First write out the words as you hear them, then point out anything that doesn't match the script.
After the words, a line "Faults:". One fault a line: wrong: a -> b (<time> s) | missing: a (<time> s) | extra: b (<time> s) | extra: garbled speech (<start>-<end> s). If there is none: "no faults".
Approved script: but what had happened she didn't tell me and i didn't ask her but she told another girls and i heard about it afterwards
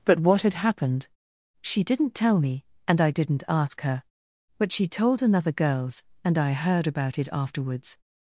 but what had happened she didn't tell me and i didn't ask her but she told another girls and i heard about it afterwards
Faults:
no faults